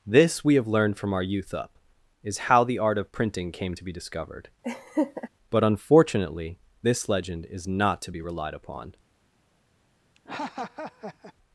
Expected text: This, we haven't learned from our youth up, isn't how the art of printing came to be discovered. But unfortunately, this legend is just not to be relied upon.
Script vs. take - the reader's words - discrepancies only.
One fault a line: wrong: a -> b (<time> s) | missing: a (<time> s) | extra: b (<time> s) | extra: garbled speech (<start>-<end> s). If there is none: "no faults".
wrong: haven't -> have (0.6 s)
wrong: isn't -> is (2.2 s)
missing: just (7.7 s)